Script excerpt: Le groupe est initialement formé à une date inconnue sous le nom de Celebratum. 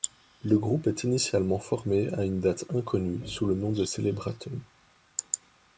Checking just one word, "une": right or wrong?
right